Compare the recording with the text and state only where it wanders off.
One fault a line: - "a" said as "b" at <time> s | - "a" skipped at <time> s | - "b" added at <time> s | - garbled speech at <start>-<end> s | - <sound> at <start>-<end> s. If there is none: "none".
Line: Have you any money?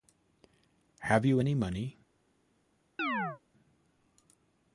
- chirp at 3.0-3.4 s